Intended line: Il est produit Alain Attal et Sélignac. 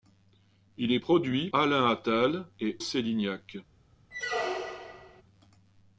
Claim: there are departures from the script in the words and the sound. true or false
true